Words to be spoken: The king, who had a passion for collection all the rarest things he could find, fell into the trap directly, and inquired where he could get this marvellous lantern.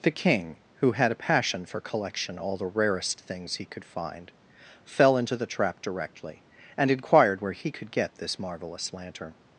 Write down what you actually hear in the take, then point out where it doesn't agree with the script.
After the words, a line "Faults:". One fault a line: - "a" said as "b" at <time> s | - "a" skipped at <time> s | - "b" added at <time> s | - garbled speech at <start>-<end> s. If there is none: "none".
The king, who had a passion for collection all the rarest things he could find, fell into the trap directly, and inquired where he could get this marvellous lantern.
Faults:
none